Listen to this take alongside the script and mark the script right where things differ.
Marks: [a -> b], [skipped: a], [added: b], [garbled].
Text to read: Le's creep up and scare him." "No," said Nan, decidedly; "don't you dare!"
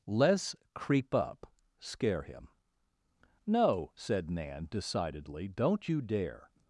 Le's creep up [skipped: and] scare him." "No," said Nan, decidedly; "don't you dare!"